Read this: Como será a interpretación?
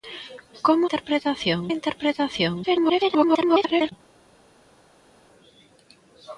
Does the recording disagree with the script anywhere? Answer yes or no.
yes